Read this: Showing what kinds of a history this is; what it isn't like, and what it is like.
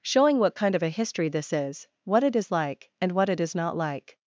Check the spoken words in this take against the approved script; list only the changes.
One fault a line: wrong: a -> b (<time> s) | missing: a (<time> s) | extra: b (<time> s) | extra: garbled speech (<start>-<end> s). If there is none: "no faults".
wrong: kinds -> kind (0.5 s)
wrong: isn't -> is (2.3 s)
extra: not (3.5 s)